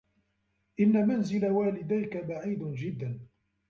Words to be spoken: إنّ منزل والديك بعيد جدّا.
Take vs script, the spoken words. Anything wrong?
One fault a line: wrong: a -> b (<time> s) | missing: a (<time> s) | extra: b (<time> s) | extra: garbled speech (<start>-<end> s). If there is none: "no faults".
no faults